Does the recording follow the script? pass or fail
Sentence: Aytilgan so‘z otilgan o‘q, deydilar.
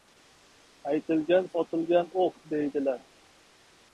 fail